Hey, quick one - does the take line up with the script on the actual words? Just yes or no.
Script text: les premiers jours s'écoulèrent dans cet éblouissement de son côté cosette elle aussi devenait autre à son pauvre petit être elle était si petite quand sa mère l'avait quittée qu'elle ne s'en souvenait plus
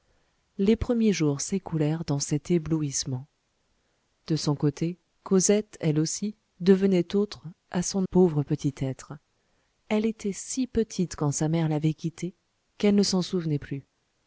yes